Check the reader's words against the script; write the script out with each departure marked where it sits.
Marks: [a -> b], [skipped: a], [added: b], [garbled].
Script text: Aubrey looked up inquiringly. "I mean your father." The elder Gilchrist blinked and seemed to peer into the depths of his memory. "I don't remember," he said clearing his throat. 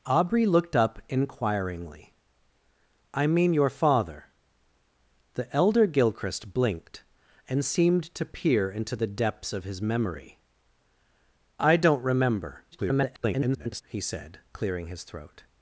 Aubrey looked up inquiringly. "I mean your father." The elder Gilchrist blinked and seemed to peer into the depths of his memory. "I don't remember," [garbled] he said clearing his throat.